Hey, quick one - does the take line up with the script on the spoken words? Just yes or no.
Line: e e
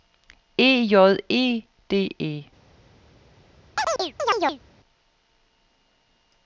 no